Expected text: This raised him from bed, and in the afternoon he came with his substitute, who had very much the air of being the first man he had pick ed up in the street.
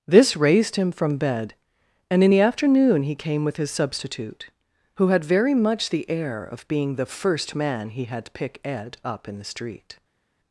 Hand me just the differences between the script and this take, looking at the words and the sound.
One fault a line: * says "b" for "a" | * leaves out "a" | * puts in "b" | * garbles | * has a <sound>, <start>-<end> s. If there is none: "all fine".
all fine